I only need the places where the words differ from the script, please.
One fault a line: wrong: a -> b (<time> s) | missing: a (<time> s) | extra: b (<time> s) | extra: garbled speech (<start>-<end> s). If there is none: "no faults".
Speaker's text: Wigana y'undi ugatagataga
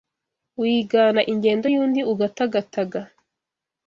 extra: ingendo (1.3 s)